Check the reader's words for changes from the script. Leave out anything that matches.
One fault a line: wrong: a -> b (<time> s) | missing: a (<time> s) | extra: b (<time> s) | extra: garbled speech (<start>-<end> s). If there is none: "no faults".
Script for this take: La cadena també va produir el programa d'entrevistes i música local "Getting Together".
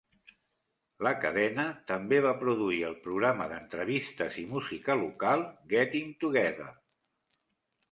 no faults